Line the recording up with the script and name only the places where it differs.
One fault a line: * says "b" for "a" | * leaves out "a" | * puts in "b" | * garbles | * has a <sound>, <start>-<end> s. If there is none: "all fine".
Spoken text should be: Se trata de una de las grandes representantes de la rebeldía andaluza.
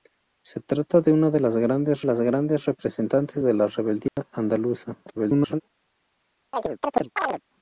* puts in "las grandes"
* has a dropout, 4.1-4.2 s
* garbles
* has a chirp, 6.5-7.4 s